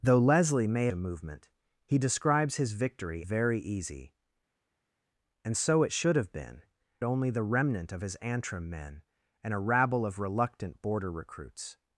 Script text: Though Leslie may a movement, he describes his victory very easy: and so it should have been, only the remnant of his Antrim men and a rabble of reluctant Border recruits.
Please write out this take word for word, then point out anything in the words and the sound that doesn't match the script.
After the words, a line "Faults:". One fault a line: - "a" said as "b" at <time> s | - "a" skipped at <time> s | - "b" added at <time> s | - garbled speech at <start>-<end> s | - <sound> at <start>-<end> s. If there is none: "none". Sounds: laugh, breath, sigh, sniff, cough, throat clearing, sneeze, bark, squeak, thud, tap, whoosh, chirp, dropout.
Though Leslie may a movement, he describes his victory very easy: and so it should have been, only the remnant of his Antrim men and a rabble of reluctant Border recruits.
Faults:
none